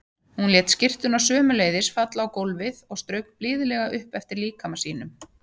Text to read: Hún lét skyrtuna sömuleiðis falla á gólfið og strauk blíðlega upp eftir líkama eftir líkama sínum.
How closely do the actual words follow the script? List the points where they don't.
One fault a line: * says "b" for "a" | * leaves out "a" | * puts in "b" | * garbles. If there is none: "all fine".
* leaves out "eftir líkama"